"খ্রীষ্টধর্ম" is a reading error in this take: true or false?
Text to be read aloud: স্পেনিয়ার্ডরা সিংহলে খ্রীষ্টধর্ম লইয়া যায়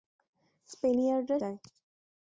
true